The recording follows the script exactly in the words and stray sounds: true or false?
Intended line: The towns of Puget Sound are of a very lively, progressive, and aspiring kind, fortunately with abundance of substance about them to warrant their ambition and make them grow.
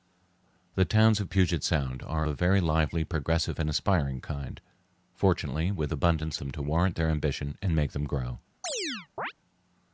false